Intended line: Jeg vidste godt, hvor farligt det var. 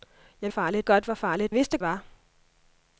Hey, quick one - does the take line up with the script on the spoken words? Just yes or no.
no